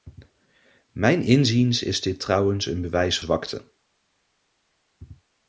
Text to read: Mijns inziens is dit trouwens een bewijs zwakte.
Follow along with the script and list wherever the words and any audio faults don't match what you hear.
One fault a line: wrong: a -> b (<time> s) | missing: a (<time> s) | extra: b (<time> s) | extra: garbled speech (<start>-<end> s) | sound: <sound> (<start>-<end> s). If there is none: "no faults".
no faults